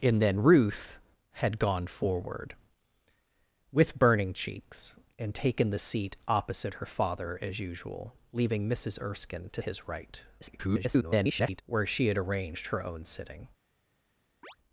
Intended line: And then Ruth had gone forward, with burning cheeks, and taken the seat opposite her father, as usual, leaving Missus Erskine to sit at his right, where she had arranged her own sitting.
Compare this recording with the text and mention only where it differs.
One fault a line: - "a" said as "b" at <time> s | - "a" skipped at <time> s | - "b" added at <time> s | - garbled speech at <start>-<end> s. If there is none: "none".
- "sit at" skipped at 9.6 s
- garbled speech at 10.4-11.6 s